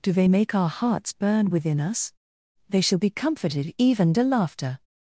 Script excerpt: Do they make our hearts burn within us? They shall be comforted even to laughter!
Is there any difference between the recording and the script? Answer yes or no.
no